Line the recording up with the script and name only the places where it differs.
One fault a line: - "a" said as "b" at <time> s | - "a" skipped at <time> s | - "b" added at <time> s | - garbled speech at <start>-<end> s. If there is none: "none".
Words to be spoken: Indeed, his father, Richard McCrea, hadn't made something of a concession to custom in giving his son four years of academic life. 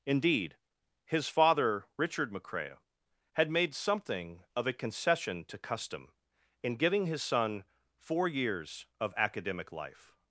- "hadn't" said as "had" at 3.3 s